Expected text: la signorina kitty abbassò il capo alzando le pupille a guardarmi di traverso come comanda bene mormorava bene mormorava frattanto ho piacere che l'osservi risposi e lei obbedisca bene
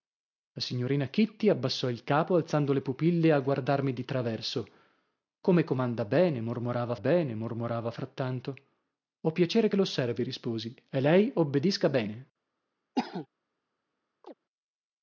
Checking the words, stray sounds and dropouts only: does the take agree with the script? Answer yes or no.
no